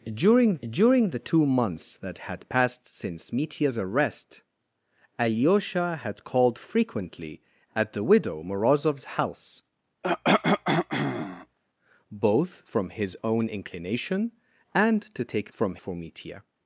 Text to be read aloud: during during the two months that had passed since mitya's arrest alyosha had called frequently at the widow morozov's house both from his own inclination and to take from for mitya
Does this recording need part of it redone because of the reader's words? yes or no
no